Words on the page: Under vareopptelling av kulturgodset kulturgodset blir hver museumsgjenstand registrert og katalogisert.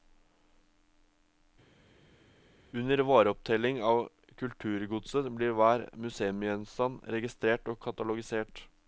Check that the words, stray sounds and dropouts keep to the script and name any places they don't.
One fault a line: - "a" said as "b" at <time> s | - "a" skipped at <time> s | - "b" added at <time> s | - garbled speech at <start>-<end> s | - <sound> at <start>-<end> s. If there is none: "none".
- "kulturgodset" skipped at 5.3 s